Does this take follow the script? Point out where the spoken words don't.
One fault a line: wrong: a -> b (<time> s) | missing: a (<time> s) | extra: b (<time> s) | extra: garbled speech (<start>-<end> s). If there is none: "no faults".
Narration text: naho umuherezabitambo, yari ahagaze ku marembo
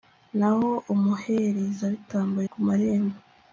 missing: yari ahagaze (2.4 s)